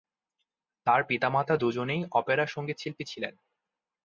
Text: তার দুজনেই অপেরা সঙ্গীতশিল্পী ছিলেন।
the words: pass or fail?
fail